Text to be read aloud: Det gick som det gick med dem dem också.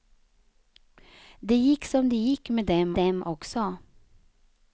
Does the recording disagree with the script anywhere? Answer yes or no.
no